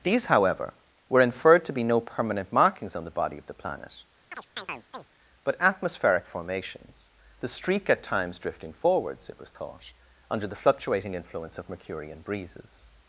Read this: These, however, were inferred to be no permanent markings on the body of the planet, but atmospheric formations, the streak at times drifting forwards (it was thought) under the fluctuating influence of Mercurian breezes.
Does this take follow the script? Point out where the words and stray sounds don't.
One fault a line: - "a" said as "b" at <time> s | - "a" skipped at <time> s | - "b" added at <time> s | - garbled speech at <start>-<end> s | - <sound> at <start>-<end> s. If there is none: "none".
- chirp at 4.3-5.1 s